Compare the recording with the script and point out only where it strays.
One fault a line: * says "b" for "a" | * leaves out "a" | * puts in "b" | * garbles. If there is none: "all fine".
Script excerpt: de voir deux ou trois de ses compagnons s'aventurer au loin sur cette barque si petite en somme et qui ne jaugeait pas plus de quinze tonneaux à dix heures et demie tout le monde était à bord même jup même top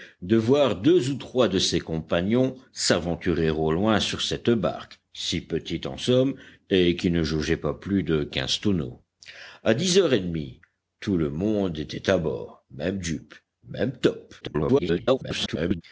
* garbles